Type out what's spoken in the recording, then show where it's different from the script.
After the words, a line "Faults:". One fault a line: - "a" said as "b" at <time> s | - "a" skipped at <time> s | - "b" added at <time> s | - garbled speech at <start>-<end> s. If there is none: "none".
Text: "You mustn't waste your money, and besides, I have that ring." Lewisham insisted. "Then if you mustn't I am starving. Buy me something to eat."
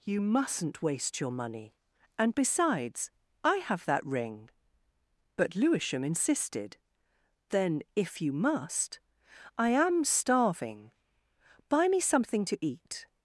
"You mustn't waste your money, and besides, I have that ring." But Lewisham insisted. "Then if you must I am starving. Buy me something to eat."
Faults:
- "But" added at 5.4 s
- "mustn't" said as "must" at 8.3 s